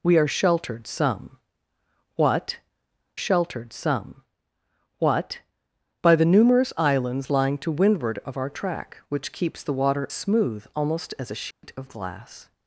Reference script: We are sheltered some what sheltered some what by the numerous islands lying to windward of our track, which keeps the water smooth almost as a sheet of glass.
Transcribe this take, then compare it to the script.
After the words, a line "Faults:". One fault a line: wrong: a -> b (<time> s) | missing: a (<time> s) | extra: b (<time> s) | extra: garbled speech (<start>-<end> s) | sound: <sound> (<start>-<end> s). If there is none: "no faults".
We are sheltered some what sheltered some what by the numerous islands lying to windward of our track, which keeps the water smooth almost as a sheet of glass.
Faults:
sound: dropout (11.5-11.6 s)